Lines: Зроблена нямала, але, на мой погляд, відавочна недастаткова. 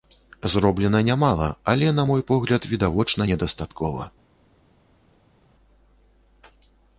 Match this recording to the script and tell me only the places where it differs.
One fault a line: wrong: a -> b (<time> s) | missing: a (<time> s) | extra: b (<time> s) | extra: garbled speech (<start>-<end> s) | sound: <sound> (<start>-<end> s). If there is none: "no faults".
no faults